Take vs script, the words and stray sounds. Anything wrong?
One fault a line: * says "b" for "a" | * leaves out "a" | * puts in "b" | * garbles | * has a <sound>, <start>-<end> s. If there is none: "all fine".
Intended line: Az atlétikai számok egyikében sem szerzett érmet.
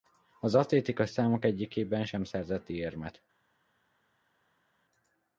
all fine